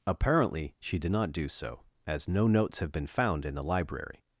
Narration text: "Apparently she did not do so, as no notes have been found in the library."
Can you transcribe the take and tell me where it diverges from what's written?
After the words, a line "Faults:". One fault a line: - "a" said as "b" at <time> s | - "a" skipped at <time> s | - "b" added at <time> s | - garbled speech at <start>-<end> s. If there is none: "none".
"Apparently she did not do so, as no notes have been found in the library."
Faults:
none